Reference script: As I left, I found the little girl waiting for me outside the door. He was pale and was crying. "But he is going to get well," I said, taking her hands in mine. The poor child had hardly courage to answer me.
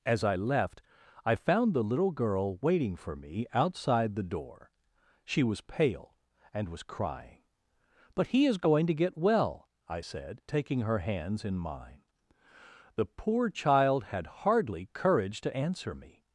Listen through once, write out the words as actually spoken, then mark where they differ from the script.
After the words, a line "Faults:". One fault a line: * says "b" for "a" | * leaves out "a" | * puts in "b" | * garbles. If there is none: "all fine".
As I left, I found the little girl waiting for me outside the door. She was pale and was crying. "But he is going to get well," I said, taking her hands in mine. The poor child had hardly courage to answer me.
Faults:
* says "She" for "He"